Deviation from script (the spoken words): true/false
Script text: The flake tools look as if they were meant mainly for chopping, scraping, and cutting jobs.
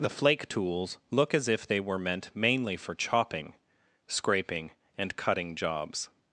false